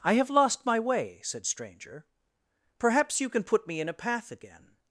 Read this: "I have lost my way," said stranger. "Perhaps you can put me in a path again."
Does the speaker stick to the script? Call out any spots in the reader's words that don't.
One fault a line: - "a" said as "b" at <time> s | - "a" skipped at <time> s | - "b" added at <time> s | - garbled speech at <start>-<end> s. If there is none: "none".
none